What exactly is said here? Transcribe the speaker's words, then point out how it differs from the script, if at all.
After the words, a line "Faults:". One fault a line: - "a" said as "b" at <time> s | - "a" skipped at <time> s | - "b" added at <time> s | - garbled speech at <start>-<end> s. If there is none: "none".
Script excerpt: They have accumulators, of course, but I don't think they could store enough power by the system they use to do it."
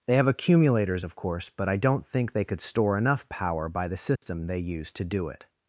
They have accumulators, of course, but I don't think they could store enough power by the system they use to do it."
Faults:
none